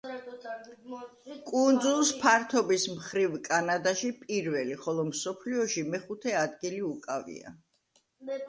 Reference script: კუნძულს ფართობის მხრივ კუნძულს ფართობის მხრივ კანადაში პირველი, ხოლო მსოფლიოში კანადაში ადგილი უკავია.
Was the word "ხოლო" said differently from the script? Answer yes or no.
no